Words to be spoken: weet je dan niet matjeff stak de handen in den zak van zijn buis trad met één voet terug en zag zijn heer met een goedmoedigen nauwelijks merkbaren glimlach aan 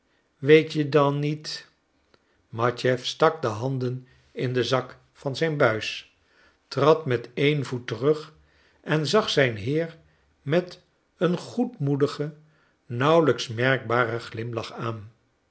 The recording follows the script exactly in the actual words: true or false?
true